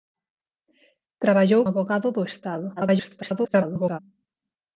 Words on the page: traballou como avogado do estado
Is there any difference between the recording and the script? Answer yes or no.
yes